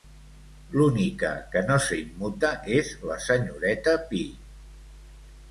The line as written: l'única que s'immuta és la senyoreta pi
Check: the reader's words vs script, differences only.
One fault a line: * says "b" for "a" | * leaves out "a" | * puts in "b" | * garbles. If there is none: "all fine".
* puts in "no"